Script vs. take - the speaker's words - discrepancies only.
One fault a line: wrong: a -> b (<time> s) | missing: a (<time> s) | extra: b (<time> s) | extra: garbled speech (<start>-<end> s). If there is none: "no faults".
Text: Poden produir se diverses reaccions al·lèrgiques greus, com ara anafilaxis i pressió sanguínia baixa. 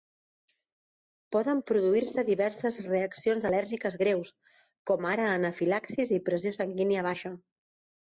no faults